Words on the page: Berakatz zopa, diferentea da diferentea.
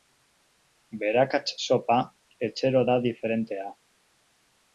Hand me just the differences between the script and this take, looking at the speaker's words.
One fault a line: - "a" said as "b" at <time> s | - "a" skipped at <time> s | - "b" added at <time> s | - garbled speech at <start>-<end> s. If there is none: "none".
- "diferentea" said as "etxero" at 2.5 s